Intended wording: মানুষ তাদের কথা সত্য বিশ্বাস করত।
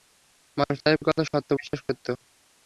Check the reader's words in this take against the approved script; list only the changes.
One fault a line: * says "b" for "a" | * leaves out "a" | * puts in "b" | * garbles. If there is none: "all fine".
all fine